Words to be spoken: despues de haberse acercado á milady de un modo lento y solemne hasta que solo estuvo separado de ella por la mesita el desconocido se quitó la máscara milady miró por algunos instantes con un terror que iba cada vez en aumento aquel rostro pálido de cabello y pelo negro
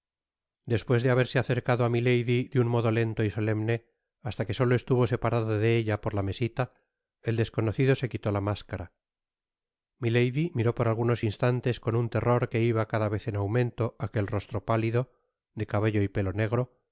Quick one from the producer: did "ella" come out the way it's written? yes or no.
yes